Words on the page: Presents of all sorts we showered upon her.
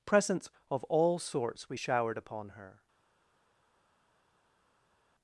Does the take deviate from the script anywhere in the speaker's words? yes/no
no